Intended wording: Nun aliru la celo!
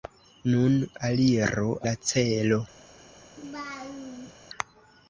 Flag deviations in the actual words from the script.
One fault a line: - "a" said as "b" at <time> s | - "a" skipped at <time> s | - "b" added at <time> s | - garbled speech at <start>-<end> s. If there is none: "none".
none